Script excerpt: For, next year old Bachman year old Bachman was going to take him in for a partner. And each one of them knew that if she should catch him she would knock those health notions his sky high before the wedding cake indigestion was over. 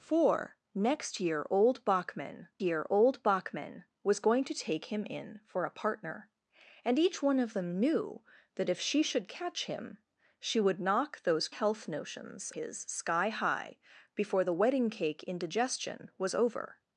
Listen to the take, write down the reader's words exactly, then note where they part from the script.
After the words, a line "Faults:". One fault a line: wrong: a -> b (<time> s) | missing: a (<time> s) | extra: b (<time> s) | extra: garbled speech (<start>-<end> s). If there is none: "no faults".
For, next year old Bachman year old Bachman was going to take him in for a partner. And each one of them knew that if she should catch him she would knock those health notions his sky high before the wedding cake indigestion was over.
Faults:
no faults